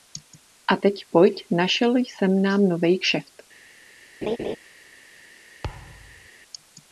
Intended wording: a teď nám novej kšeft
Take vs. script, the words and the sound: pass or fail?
fail